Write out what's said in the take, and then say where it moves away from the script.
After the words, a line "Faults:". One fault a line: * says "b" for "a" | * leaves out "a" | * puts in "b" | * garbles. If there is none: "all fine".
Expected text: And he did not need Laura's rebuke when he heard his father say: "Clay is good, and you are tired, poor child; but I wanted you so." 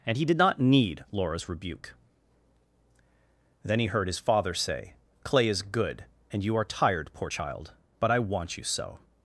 And he did not need Laura's rebuke then he heard his father say: "Clay is good, and you are tired, poor child; but I want you so."
Faults:
* says "then" for "when"
* says "want" for "wanted"